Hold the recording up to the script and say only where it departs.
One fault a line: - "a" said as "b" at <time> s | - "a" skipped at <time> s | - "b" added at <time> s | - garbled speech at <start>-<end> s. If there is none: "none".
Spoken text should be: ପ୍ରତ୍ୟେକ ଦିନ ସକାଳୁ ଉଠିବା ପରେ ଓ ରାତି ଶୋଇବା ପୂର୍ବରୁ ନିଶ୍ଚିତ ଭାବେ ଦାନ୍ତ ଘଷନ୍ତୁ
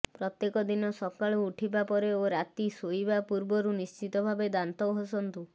none